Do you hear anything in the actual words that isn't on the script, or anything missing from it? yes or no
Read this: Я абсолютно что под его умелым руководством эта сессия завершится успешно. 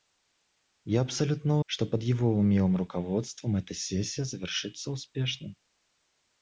no